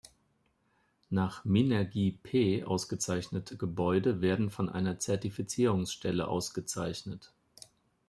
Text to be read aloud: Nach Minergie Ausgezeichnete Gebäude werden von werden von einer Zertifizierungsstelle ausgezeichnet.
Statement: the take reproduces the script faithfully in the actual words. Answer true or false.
false